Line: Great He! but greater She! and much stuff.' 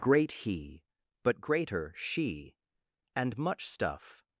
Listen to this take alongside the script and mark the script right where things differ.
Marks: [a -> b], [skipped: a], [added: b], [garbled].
Great He! but greater She! and much stuff.'